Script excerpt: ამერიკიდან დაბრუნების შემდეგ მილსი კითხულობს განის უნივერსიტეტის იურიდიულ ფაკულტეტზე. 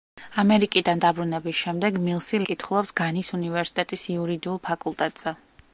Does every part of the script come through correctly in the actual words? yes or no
yes